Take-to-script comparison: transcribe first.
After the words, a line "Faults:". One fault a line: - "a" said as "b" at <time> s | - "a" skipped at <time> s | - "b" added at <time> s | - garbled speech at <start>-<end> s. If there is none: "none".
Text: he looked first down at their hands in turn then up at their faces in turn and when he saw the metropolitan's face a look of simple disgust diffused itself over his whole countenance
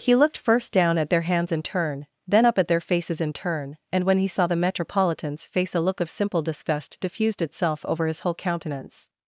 he looked first down at their hands in turn then up at their faces in turn and when he saw the metropolitan's face a look of simple disgust diffused itself over his whole countenance
Faults:
none